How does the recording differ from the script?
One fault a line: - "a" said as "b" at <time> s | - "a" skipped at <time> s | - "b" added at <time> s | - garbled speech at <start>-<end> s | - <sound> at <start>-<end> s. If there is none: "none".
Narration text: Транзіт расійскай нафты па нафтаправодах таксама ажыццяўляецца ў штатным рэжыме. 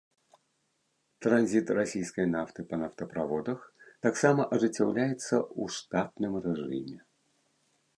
none